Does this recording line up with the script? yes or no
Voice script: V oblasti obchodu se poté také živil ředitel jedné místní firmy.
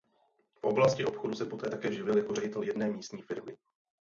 no